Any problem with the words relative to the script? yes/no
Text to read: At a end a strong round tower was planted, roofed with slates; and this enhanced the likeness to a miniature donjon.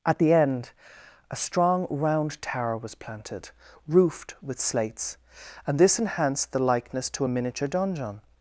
yes